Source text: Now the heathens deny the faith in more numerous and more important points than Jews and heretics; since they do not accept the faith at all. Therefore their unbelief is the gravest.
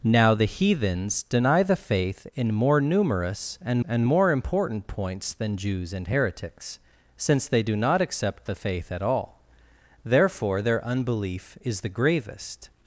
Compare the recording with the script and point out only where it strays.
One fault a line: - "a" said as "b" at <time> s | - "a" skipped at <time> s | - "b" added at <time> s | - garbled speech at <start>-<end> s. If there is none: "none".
- "and" added at 3.9 s